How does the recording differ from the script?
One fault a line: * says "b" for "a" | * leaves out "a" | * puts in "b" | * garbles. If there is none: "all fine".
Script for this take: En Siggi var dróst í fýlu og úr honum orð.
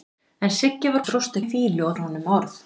all fine